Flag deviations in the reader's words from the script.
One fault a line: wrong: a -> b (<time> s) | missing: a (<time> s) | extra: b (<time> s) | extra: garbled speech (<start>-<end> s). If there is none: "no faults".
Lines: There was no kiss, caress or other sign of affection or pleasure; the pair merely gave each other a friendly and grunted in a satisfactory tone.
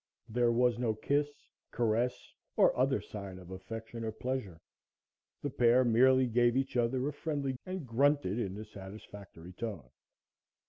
no faults